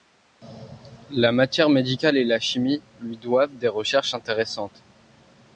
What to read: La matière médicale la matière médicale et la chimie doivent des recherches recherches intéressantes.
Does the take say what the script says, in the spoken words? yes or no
no